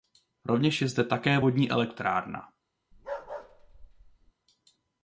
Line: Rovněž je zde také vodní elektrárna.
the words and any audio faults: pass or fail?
fail